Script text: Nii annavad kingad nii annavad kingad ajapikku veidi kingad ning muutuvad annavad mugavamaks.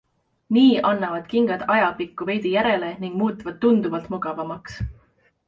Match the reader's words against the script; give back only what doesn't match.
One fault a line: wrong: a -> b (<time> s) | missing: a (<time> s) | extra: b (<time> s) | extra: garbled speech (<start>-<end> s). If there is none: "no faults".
missing: nii annavad kingad (1.6 s)
wrong: kingad -> järele (2.6 s)
wrong: annavad -> tunduvalt (3.7 s)